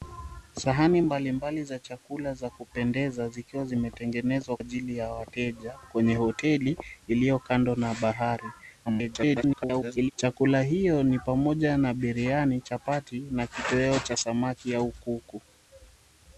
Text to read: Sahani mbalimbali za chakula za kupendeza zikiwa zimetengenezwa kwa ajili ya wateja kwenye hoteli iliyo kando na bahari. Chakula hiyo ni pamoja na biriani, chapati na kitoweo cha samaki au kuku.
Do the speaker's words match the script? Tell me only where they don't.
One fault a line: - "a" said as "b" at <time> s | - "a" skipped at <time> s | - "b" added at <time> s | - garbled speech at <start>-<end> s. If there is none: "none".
- "kwa" skipped at 4.6 s
- garbled speech at 8.9-10.1 s